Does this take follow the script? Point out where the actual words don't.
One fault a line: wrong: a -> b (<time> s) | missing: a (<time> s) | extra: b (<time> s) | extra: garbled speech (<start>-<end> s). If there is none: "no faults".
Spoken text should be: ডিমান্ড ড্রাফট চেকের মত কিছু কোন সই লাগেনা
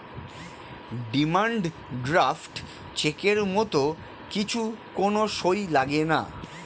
no faults